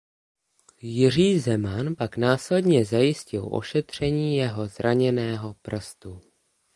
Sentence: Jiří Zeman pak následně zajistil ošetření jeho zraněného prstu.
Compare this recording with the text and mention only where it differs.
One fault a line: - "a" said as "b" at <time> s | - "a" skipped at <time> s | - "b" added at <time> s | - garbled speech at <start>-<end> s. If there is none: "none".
none